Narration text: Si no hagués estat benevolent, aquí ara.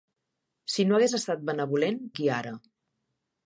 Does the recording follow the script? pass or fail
pass